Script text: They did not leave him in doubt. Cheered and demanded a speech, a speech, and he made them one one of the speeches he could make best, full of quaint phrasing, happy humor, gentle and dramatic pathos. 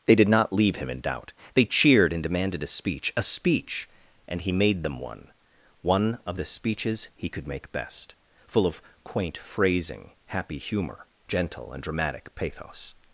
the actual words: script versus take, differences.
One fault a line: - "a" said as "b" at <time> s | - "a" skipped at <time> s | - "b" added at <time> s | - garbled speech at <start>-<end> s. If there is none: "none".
- "They" added at 1.5 s